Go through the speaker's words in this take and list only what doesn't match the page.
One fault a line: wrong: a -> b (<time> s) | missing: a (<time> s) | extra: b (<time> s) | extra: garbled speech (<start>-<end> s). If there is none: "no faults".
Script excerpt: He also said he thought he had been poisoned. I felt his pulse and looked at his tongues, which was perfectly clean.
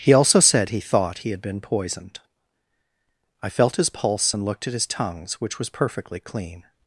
no faults